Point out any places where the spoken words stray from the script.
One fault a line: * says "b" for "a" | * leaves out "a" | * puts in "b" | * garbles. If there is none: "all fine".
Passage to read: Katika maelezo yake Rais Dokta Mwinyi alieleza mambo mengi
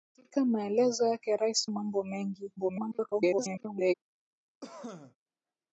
* leaves out "Dokta Mwinyi alieleza"
* garbles